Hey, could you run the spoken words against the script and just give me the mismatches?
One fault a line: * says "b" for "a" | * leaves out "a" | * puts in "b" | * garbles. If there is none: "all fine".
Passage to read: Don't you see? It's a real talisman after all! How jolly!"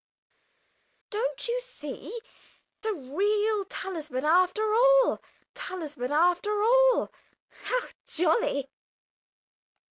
* leaves out "It's"
* puts in "talisman after all"